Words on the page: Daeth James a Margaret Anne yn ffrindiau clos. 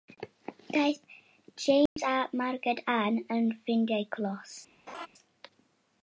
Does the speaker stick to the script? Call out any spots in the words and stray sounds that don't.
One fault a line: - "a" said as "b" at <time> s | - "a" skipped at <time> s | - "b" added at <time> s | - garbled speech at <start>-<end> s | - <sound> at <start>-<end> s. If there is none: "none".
- dropout at 1.9-2.0 s
- laugh at 4.9-5.1 s